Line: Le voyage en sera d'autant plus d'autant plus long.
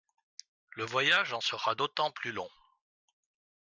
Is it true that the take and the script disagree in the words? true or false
true